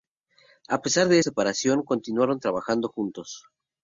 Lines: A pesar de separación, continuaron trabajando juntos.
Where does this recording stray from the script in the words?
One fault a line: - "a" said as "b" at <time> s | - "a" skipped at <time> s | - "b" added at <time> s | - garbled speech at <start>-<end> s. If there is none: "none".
none